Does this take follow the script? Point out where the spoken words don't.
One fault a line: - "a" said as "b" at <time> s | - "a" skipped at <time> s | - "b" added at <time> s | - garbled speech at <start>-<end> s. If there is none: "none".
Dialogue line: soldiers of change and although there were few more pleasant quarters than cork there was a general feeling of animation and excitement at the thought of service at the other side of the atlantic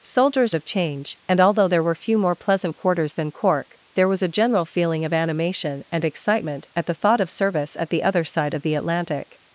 none